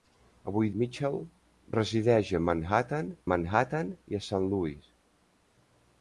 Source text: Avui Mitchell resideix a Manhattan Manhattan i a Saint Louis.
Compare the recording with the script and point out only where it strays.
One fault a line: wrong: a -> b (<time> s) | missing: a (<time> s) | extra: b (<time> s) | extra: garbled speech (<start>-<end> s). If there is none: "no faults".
no faults